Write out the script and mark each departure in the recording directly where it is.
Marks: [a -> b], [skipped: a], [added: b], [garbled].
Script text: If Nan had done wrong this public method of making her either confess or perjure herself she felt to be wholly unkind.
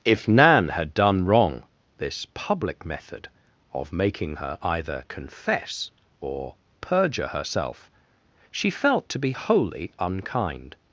If Nan had done wrong this public method of making her either confess or perjure herself she felt to be wholly unkind.